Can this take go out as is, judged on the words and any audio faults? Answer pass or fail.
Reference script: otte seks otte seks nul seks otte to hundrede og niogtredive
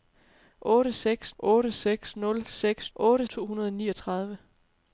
pass